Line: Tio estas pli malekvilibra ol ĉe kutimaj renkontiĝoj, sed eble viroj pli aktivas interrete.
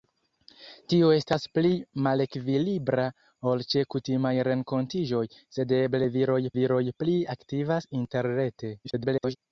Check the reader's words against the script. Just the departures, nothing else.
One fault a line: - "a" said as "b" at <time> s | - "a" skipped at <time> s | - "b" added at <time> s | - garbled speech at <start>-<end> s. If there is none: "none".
- "viroj" added at 6.6 s
- garbled speech at 8.8-9.4 s